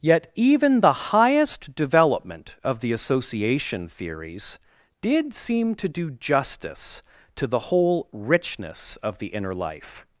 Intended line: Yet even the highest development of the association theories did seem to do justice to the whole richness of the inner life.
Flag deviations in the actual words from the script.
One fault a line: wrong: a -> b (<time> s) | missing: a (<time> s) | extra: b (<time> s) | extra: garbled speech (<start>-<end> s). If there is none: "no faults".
no faults